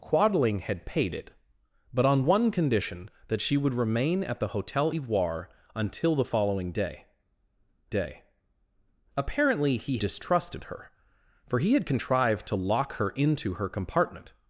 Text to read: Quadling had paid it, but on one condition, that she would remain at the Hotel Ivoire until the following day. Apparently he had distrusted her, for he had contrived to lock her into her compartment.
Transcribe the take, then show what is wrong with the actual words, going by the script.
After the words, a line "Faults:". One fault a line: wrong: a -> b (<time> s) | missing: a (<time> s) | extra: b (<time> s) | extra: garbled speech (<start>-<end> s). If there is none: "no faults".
Quadling had paid it, but on one condition, that she would remain at the Hotel Ivoire until the following day day. Apparently he distrusted her, for he had contrived to lock her into her compartment.
Faults:
extra: day (7.9 s)
missing: had (10.0 s)